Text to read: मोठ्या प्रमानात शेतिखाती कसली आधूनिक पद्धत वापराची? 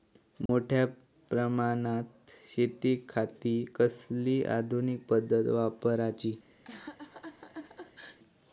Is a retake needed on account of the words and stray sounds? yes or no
yes